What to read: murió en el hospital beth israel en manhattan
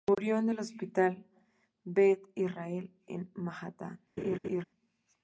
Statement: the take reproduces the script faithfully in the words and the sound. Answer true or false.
false